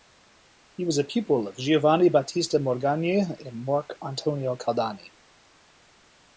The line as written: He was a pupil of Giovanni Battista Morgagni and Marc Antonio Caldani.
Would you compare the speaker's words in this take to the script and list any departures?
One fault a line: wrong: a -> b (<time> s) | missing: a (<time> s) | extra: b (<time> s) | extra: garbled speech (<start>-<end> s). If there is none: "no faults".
no faults